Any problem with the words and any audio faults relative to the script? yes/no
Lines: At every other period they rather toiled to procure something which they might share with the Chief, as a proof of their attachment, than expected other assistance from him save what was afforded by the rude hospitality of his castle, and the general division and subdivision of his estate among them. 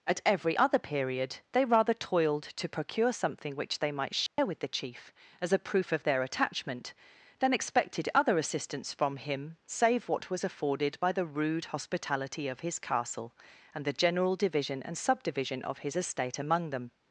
yes